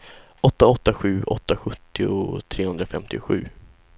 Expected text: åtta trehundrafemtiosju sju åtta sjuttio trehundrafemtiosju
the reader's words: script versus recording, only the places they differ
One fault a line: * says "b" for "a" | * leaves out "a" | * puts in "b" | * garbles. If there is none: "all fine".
* says "åtta" for "trehundrafemtiosju"